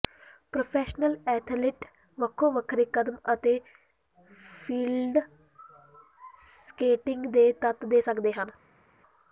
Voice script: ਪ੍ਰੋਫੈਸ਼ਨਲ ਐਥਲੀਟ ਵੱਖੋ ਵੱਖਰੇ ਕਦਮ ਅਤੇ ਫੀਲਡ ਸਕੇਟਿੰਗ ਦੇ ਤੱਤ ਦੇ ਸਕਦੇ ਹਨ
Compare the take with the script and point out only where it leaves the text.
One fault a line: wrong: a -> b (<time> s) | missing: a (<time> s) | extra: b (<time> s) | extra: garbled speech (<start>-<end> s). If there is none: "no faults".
no faults